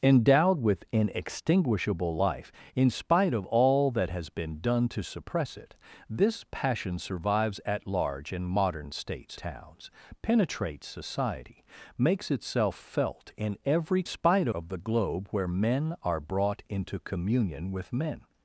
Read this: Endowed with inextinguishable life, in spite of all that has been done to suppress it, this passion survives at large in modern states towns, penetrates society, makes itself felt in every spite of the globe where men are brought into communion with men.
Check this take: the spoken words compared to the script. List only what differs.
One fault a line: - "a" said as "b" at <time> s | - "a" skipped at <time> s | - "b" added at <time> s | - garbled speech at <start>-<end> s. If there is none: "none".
none